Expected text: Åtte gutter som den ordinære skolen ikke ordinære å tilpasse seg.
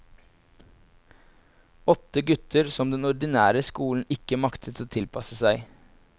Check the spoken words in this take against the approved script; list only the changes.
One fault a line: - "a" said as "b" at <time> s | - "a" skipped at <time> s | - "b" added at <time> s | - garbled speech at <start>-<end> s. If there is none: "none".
- "ordinære" said as "maktet" at 4.4 s